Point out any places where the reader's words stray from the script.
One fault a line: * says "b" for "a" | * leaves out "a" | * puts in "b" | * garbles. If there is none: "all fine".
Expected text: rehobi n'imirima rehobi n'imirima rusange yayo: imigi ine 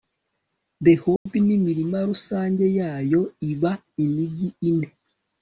* leaves out "rehobi n'imirima"
* puts in "iba"